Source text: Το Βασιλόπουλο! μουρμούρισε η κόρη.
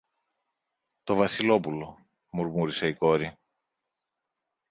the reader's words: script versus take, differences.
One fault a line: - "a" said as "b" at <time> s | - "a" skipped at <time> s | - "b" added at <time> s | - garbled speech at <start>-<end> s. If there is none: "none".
none